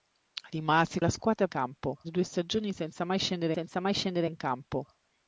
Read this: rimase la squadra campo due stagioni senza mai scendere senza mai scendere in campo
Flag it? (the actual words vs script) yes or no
no